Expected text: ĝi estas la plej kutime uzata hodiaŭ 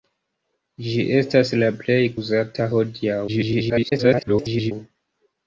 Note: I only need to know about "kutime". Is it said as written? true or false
false